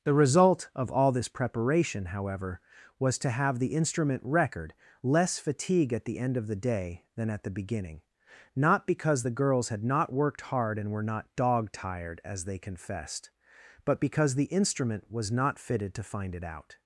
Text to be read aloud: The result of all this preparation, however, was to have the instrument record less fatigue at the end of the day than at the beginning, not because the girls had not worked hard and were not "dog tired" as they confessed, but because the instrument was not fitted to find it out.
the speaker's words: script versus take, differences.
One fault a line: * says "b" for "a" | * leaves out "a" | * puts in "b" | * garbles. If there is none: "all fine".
all fine